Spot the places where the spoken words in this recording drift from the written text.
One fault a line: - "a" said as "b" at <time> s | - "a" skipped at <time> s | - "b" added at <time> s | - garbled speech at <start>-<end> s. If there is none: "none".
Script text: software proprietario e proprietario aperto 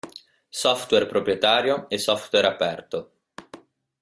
- "proprietario" said as "software" at 2.0 s